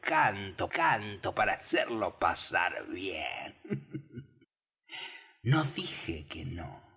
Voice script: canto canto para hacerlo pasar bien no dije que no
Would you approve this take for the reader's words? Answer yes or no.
yes